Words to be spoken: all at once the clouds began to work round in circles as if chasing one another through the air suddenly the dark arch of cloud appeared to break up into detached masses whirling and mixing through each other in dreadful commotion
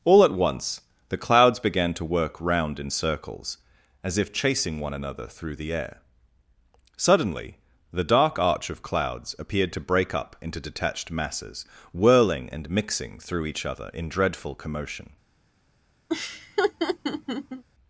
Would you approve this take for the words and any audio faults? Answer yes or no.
no